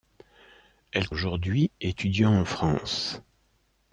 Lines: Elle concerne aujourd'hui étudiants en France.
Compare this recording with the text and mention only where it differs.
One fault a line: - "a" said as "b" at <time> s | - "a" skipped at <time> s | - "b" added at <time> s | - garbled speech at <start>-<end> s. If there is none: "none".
- "concerne" skipped at 1.1 s